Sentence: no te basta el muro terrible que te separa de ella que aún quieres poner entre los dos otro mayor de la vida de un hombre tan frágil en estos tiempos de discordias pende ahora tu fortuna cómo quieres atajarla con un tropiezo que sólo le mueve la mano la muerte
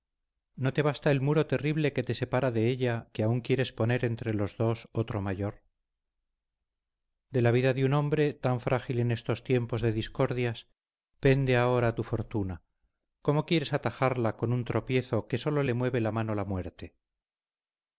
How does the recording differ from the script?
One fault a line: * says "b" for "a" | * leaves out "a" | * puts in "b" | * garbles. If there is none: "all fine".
all fine